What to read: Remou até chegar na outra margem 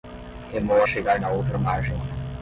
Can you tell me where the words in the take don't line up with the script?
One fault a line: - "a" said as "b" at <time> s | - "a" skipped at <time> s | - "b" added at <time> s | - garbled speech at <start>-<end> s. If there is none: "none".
- "até" skipped at 0.8 s